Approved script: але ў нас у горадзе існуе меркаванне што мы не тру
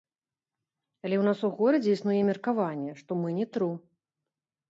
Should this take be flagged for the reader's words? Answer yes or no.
no